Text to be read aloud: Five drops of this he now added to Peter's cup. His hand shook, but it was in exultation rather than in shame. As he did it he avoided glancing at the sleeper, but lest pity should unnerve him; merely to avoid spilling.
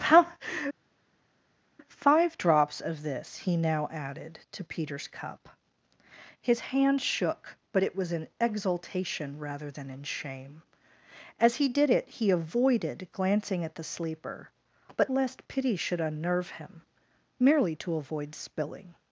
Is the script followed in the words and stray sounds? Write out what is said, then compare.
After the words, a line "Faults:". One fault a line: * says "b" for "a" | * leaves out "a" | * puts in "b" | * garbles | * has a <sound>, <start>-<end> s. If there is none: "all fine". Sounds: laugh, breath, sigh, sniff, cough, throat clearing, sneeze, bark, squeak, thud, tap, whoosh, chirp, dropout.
Five drops of this he now added to Peter's cup. His hand shook, but it was in exultation rather than in shame. As he did it he avoided glancing at the sleeper, but lest pity should unnerve him; merely to avoid spilling.
Faults:
all fine